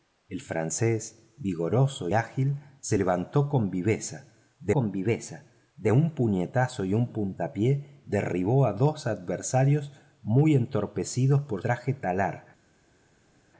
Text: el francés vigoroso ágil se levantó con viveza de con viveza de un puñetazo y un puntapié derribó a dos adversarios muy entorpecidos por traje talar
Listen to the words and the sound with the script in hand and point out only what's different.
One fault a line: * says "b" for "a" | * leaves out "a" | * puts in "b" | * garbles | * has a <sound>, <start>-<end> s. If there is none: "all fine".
all fine